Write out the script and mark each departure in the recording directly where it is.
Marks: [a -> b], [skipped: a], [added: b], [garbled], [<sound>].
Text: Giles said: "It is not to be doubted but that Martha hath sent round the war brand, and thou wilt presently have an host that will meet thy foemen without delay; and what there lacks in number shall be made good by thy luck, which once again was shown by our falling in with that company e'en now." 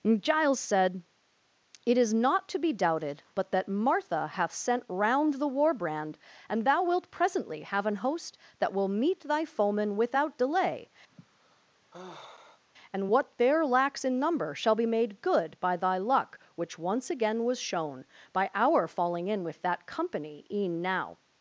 Giles said: "It is not to be doubted but that Martha hath sent round the war brand, and thou wilt presently have an host that will meet thy foemen without delay; [sigh] and what there lacks in number shall be made good by thy luck, which once again was shown by our falling in with that company e'en now."